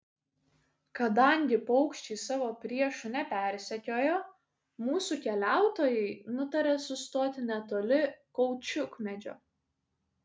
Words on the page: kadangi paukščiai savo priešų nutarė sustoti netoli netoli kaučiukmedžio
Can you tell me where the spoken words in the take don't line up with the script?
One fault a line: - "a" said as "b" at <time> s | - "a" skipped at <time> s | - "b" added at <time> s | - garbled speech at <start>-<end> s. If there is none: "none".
- "nepersekiojo mūsų keliautojai" added at 3.2 s
- "netoli" skipped at 8.0 s